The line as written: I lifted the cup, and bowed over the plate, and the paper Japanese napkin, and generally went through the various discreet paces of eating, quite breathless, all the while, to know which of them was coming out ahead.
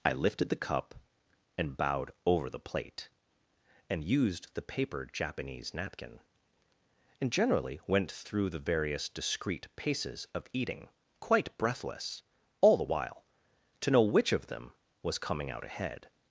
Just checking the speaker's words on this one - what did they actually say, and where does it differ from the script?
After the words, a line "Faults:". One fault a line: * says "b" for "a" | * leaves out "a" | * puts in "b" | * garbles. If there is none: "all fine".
I lifted the cup, and bowed over the plate, and used the paper Japanese napkin, and generally went through the various discreet paces of eating, quite breathless, all the while, to know which of them was coming out ahead.
Faults:
* puts in "used"